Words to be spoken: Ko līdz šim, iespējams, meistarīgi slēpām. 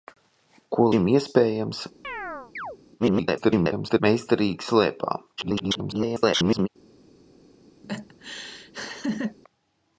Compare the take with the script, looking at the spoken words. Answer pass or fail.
fail